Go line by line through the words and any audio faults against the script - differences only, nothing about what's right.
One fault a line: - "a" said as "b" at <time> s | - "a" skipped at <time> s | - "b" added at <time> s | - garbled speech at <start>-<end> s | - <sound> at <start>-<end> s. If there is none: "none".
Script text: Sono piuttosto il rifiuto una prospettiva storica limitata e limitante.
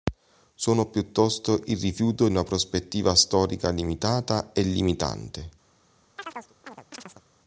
- chirp at 6.2-7.2 s